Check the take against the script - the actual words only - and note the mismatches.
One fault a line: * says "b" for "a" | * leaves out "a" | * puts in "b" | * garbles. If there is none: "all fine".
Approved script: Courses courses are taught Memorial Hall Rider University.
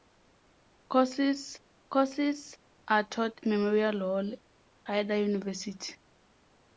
all fine